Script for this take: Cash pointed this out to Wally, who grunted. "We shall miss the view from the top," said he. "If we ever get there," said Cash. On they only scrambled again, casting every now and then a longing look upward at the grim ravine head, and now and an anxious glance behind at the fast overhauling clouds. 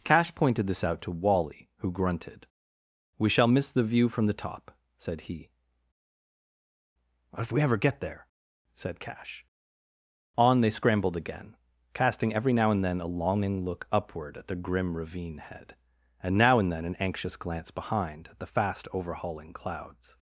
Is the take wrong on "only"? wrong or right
wrong